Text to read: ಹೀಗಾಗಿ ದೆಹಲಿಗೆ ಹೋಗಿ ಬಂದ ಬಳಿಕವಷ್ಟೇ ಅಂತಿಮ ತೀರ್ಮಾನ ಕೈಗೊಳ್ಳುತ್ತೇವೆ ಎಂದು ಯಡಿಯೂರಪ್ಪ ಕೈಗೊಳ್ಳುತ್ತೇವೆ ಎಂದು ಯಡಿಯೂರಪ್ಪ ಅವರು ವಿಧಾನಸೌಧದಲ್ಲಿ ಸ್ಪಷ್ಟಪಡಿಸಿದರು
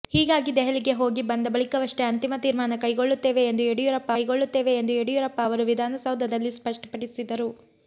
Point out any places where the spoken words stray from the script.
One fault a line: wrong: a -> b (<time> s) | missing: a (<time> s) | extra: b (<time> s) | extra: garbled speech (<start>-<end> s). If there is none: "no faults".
no faults